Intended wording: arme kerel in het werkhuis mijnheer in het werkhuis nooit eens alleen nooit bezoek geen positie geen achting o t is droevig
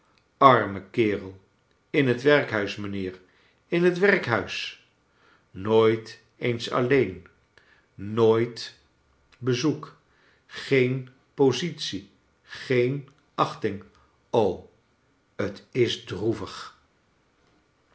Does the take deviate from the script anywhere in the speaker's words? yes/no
no